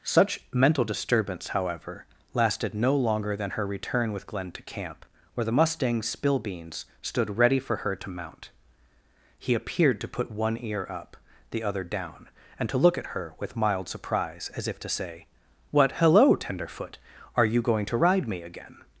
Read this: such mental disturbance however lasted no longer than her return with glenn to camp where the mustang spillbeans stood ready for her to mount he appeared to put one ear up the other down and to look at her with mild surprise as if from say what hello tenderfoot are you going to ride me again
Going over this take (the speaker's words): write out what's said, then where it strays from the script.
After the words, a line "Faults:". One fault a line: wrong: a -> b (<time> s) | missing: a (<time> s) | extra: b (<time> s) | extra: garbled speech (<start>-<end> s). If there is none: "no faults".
such mental disturbance however lasted no longer than her return with glenn to camp where the mustang spillbeans stood ready for her to mount he appeared to put one ear up the other down and to look at her with mild surprise as if to say what hello tenderfoot are you going to ride me again
Faults:
wrong: from -> to (14.8 s)